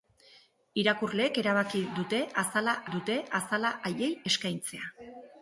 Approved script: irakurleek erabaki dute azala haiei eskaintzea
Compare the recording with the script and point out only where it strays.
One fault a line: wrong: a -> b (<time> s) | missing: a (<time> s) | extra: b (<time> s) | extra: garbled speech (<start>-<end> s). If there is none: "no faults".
extra: dute azala (3.0 s)